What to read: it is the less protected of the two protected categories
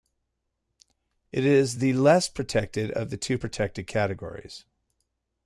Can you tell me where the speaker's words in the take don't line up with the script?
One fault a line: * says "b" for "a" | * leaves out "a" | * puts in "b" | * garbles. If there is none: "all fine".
all fine